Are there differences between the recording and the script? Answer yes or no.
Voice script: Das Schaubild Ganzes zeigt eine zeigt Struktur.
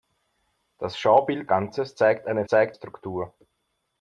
no